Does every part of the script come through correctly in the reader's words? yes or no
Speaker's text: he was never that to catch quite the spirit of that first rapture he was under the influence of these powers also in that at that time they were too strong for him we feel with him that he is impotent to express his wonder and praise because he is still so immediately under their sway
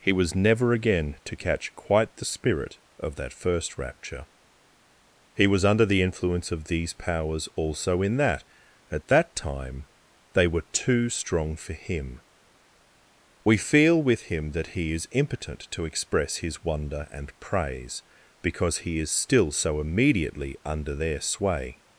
no